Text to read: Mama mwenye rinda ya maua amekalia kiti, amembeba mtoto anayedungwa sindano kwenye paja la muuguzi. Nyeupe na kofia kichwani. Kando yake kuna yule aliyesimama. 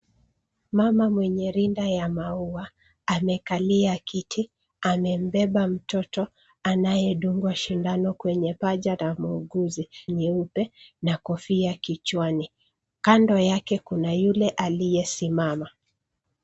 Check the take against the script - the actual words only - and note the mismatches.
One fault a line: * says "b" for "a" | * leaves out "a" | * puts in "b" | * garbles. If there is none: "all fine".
all fine